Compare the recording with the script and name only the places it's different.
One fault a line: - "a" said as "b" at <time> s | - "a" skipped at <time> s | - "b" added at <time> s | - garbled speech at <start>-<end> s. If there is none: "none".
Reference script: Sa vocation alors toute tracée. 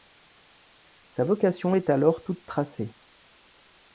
- "est" added at 1.7 s